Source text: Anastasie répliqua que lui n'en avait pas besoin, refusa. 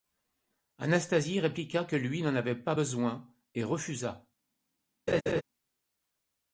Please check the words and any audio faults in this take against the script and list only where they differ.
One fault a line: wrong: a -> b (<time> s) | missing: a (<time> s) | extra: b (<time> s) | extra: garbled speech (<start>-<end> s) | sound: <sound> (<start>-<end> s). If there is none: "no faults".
extra: et (3.5 s)
sound: laugh (5.1-5.4 s)